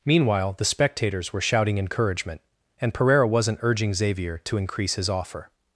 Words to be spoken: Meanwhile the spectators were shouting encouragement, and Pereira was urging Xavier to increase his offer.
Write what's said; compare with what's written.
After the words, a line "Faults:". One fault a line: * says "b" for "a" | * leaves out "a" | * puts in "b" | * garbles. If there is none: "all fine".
Meanwhile the spectators were shouting encouragement, and Pereira wasn't urging Xavier to increase his offer.
Faults:
* says "wasn't" for "was"